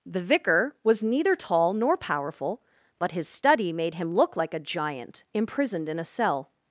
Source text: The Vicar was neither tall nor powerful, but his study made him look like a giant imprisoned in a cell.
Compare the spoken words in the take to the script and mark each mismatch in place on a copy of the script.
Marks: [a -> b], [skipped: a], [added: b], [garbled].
The Vicar was neither tall nor powerful, but his study made him look like a giant imprisoned in a cell.